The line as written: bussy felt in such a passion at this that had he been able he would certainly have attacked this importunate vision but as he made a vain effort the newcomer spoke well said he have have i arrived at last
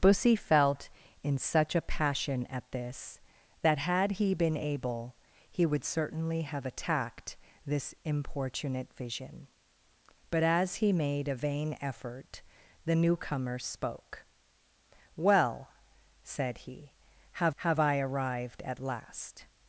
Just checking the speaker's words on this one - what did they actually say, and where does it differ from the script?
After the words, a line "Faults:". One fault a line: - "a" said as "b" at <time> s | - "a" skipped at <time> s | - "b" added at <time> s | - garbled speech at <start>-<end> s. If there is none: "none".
bussy felt in such a passion at this that had he been able he would certainly have attacked this importunate vision but as he made a vain effort the newcomer spoke well said he have have i arrived at last
Faults:
none